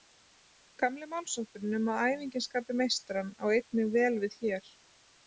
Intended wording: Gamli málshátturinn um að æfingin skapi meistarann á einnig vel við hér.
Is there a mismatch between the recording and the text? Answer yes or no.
no